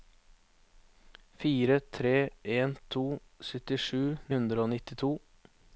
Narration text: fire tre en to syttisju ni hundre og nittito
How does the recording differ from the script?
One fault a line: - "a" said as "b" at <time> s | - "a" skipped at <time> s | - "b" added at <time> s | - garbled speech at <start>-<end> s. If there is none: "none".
- "ni" skipped at 4.0 s